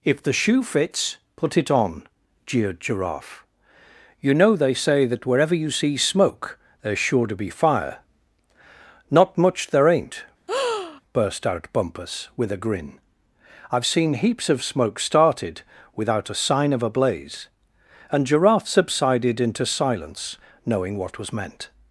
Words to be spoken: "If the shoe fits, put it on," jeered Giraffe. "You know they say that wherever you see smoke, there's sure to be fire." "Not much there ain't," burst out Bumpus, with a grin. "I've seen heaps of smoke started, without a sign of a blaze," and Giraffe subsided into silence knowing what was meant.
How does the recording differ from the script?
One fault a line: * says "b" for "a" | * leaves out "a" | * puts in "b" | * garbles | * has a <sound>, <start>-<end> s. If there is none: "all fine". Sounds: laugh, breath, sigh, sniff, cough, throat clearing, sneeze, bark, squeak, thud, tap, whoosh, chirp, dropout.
* has a breath, 10.5-11.0 s